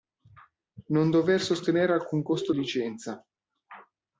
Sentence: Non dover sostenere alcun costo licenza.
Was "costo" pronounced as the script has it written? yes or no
yes